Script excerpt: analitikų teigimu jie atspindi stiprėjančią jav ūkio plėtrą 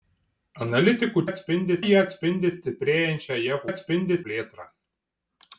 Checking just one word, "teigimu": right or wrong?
wrong